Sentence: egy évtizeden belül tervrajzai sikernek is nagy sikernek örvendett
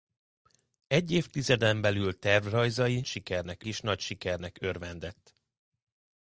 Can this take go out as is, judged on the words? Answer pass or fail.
pass